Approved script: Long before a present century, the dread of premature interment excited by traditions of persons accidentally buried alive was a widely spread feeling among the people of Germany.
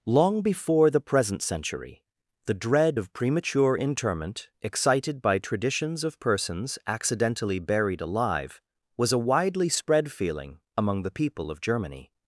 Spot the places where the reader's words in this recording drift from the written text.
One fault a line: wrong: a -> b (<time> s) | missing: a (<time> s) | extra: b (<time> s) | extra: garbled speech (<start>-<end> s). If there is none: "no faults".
wrong: a -> the (0.9 s)